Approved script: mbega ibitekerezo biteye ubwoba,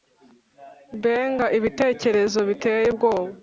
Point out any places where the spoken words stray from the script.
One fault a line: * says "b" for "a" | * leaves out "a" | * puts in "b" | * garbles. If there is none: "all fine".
all fine